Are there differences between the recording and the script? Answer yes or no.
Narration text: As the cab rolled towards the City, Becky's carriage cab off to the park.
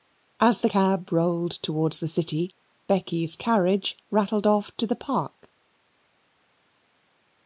yes